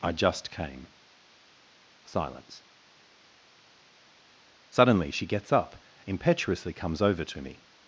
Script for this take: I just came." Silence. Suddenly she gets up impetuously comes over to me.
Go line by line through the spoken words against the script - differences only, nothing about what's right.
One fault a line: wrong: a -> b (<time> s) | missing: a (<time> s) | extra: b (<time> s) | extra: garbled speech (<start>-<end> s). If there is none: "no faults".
no faults